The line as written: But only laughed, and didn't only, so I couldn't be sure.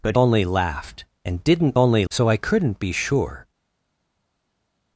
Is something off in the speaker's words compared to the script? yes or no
no